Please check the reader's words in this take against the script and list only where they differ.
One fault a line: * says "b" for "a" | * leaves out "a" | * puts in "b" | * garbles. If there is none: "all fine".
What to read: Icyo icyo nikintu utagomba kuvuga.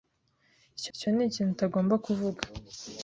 all fine